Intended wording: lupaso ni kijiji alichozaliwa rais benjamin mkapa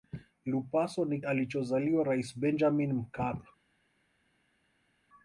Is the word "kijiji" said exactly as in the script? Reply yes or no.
no